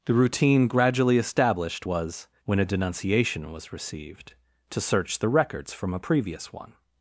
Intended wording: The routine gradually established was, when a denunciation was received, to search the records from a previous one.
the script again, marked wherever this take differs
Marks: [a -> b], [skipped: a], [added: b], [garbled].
The routine gradually established was, when a denunciation was received, to search the records from a previous one.